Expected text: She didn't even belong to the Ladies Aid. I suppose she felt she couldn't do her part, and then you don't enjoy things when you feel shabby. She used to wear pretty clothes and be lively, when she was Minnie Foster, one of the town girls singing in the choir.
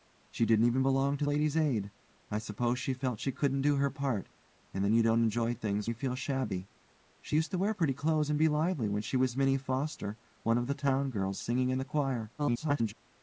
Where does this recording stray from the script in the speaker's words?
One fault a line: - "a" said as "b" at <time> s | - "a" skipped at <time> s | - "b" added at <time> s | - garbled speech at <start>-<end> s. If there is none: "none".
- "the" skipped at 1.3 s
- "when" skipped at 5.9 s
- garbled speech at 12.4-12.9 s